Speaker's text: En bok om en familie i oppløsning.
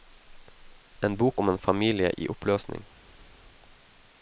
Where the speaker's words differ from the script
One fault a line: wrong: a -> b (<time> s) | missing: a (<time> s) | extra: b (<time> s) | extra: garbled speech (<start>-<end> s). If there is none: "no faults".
no faults